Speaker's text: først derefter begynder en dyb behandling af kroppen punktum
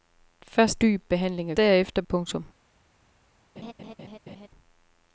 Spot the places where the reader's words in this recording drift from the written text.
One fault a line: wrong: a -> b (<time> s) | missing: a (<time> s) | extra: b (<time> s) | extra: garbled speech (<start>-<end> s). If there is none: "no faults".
missing: derefter begynder en (0.8 s)
wrong: kroppen -> derefter (1.6 s)